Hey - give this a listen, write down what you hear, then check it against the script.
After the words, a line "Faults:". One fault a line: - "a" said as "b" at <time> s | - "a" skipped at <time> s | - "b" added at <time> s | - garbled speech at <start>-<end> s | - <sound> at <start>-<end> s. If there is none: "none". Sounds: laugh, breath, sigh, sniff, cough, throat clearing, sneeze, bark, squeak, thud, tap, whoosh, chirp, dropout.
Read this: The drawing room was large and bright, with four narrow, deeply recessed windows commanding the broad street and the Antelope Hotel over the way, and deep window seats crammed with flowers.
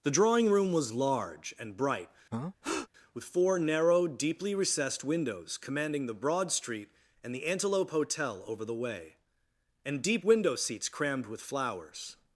The drawing room was large and bright, with four narrow, deeply recessed windows commanding the broad street and the Antelope Hotel over the way, and deep window seats crammed with flowers.
Faults:
- breath at 2.3-2.9 s